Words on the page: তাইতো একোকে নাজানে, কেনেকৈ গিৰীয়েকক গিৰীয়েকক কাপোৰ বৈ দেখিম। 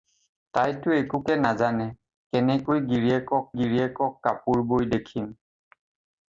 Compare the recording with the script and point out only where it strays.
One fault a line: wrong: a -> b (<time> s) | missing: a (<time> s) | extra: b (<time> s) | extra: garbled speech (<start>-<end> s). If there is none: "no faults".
no faults